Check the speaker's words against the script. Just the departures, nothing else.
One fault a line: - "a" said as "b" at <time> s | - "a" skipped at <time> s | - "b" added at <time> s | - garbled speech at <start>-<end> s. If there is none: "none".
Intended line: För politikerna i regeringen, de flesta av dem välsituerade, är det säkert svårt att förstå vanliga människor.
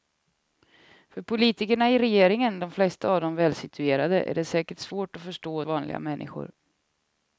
none